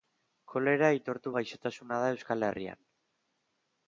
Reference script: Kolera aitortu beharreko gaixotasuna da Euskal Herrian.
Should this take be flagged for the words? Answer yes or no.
yes